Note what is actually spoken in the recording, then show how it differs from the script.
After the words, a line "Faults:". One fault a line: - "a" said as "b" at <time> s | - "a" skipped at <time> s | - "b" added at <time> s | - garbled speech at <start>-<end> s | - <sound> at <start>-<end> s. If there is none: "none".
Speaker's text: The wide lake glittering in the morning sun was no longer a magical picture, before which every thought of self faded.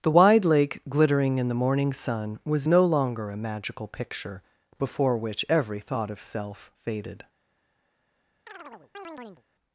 The wide lake glittering in the morning sun was no longer a magical picture, before which every thought of self faded.
Faults:
- chirp at 8.5-9.4 s